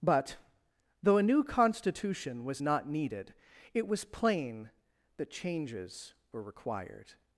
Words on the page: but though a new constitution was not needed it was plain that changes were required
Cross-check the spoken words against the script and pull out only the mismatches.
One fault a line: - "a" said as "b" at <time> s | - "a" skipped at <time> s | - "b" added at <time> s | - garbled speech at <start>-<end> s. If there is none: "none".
none